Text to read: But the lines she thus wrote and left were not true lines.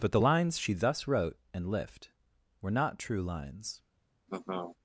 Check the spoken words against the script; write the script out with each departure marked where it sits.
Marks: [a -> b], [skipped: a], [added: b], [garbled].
But the lines she thus wrote and [left -> lift] were not true lines.